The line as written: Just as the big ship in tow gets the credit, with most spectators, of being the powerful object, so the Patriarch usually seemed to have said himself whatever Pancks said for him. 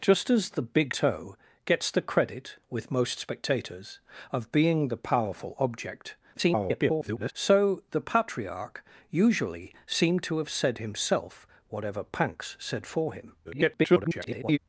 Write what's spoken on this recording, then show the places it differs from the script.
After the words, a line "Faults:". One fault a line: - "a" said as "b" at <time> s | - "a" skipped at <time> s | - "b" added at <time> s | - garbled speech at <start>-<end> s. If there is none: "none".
Just as the big tow gets the credit, with most spectators, of being the powerful object, [garbled] so the Patriarch usually seemed to have said himself whatever Pancks said for him. [garbled]
Faults:
- "ship in" skipped at 0.9 s
- garbled speech at 6.3-7.3 s
- garbled speech at 13.4-14.6 s